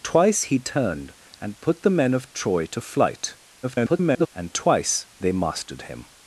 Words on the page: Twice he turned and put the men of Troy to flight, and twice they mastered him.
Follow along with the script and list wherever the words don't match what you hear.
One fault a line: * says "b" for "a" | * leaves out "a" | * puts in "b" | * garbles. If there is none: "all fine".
* garbles